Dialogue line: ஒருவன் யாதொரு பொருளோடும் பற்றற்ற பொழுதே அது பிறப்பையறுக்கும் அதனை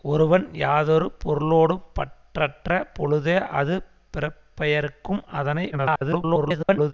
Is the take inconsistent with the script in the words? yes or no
yes